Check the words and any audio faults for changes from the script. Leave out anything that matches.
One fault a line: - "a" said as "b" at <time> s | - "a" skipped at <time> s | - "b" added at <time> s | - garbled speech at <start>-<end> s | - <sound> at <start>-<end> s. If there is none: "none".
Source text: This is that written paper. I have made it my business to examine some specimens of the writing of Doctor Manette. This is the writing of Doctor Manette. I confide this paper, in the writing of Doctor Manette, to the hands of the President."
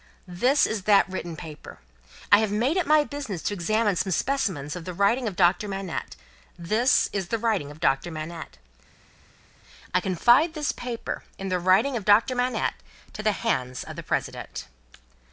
none